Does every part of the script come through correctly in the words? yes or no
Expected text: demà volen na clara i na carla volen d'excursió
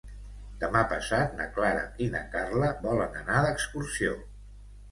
no